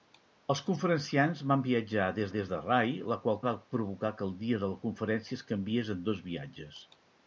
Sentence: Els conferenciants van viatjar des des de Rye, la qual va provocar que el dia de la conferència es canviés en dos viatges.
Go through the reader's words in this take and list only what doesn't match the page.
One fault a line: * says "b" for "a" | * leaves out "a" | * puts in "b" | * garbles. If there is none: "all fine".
all fine